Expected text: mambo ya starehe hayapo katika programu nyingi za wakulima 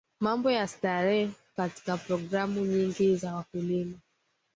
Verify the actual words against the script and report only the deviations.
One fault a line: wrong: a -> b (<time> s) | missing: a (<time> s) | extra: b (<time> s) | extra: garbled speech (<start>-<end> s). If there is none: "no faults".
missing: hayapo (1.3 s)